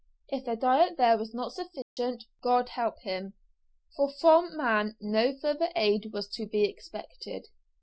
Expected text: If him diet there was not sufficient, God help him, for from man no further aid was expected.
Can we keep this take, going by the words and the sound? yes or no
no